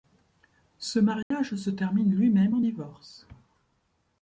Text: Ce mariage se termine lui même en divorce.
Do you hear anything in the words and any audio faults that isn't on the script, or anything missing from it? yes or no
yes